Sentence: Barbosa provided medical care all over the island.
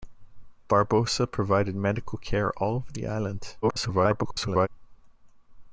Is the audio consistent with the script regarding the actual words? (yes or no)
no